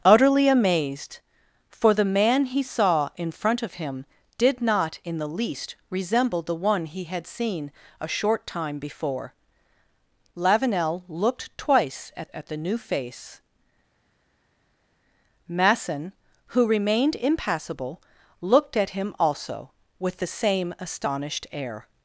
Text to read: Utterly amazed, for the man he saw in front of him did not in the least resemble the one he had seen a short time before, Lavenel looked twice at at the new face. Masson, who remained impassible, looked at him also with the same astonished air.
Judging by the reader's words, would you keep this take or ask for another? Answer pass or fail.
pass